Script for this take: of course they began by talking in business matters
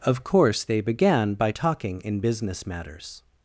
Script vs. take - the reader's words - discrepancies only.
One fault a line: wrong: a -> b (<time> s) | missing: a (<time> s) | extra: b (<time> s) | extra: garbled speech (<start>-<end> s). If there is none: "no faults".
no faults